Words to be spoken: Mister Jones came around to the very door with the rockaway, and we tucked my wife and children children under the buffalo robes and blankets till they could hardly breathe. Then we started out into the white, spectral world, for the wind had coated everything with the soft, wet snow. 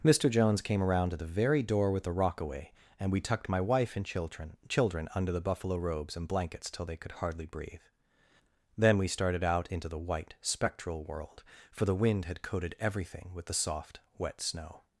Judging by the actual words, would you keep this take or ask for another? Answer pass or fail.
pass